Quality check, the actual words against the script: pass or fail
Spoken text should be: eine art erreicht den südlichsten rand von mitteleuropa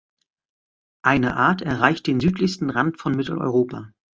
pass